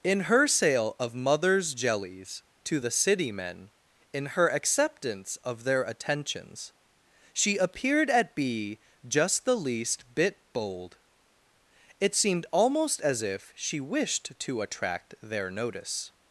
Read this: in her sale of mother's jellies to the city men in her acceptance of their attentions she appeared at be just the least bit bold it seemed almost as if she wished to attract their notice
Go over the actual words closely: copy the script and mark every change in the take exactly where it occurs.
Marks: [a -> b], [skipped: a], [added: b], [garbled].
in her sale of mother's jellies to the city men in her acceptance of their attentions she appeared at be just the least bit bold it seemed almost as if she wished to attract their notice